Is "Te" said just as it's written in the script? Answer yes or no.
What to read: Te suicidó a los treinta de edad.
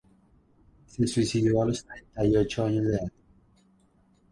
no